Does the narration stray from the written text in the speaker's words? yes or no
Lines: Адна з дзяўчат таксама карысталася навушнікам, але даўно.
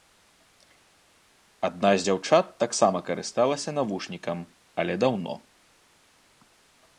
no